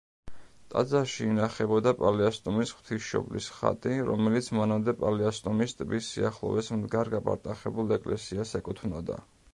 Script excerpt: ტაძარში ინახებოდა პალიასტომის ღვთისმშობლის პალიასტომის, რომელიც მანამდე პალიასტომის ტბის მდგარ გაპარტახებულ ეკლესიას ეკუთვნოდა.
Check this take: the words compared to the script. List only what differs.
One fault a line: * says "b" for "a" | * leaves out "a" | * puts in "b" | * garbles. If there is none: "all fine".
* says "ხატი" for "პალიასტომის"
* puts in "სიახლოვეს"